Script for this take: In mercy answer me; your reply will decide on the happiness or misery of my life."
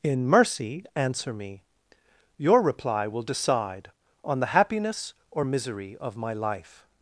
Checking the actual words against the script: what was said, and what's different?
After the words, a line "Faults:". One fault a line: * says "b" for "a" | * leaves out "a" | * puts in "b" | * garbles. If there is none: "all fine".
In mercy answer me; your reply will decide on the happiness or misery of my life."
Faults:
all fine